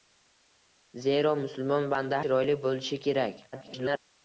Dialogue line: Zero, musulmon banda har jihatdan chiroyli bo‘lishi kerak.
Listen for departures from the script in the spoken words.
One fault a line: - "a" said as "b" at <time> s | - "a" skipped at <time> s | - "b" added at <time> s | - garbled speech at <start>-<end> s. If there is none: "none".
- "har jihatdan" skipped at 2.2 s
- garbled speech at 3.5-4.0 s